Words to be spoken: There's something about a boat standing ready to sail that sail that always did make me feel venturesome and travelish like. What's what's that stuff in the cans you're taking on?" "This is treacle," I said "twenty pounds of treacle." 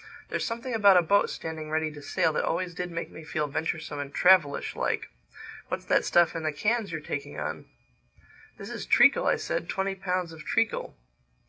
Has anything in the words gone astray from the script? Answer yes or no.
yes